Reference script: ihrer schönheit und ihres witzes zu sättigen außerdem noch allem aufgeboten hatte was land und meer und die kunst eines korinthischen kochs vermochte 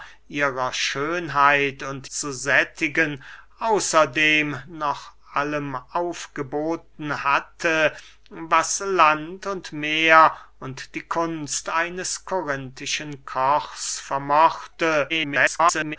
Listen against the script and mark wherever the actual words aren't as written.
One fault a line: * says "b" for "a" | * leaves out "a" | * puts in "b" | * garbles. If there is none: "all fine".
* leaves out "ihres witzes"
* garbles